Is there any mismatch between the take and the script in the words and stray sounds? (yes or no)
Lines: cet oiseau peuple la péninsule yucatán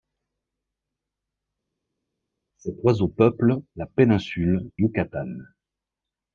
no